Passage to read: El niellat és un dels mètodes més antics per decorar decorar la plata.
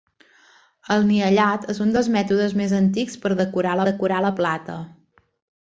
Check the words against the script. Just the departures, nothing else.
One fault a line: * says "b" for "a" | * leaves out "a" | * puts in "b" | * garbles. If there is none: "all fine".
all fine